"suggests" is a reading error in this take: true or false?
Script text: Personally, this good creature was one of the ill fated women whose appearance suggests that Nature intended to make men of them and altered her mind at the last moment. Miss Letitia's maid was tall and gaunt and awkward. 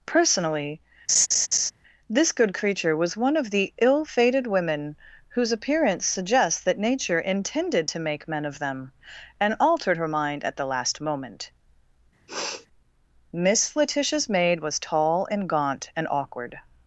false